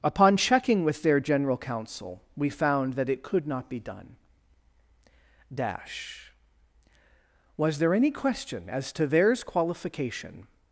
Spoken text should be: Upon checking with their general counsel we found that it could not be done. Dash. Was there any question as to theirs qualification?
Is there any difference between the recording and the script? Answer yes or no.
no